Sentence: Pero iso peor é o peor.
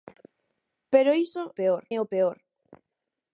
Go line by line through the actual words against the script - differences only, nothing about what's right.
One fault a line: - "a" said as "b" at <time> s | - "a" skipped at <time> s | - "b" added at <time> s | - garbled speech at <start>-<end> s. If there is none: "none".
none